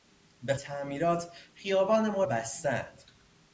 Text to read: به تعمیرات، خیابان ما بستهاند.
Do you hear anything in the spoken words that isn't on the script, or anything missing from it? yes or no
no